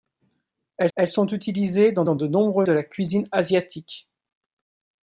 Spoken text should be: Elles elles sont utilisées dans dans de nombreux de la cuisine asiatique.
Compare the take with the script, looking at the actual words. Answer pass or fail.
pass